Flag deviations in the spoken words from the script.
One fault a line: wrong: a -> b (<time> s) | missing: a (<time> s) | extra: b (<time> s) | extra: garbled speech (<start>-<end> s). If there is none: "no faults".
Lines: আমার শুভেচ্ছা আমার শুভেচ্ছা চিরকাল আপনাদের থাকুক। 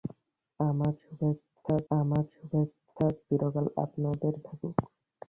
no faults